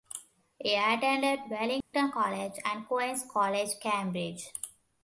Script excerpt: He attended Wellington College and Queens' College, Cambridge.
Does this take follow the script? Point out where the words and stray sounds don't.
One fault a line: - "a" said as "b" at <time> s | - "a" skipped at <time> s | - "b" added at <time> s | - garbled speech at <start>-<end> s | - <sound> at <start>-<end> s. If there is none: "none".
- dropout at 1.8-1.9 s